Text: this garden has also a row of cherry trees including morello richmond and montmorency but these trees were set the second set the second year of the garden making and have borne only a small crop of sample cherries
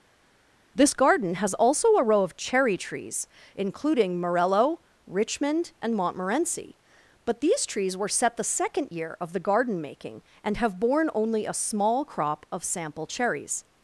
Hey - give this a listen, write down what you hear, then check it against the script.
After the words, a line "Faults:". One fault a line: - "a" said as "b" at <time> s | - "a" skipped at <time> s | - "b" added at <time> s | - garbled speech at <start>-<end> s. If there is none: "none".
this garden has also a row of cherry trees including morello richmond and montmorency but these trees were set the second year of the garden making and have borne only a small crop of sample cherries
Faults:
- "set the second" skipped at 8.9 s